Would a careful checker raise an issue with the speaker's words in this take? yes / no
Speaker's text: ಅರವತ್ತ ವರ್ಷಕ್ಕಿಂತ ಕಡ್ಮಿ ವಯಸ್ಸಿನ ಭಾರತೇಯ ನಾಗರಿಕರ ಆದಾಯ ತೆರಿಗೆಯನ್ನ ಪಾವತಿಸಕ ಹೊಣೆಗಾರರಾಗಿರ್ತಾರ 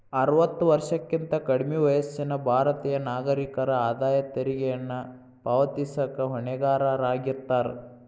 no